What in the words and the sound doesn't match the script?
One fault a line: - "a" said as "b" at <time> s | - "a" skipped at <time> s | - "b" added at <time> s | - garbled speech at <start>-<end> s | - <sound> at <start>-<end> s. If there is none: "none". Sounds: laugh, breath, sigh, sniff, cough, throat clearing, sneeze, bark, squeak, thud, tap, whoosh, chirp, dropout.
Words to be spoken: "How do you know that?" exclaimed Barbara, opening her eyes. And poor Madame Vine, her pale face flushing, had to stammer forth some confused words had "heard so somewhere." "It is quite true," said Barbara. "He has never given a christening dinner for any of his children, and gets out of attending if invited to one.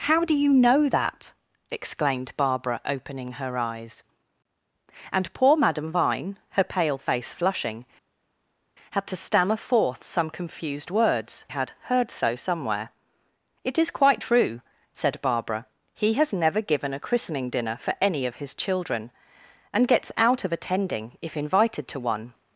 none